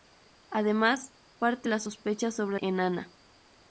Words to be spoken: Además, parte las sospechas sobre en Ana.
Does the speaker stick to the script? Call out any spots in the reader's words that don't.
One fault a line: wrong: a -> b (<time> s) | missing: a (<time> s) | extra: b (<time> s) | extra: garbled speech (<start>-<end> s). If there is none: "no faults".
no faults